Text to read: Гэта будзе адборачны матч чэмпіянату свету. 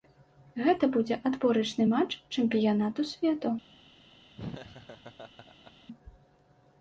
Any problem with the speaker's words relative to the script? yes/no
no